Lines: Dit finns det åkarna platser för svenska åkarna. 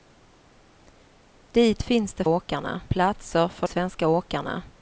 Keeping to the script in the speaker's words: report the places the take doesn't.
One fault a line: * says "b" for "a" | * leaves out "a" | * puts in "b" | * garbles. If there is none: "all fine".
all fine